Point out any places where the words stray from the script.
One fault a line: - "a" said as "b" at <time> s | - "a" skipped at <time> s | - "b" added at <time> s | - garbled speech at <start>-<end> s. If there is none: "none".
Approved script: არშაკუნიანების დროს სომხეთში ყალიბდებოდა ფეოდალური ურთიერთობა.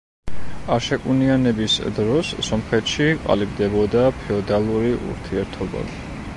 none